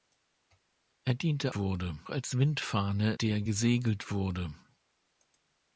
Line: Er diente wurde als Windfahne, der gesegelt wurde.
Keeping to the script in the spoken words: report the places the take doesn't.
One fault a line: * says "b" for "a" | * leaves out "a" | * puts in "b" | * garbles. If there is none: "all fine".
all fine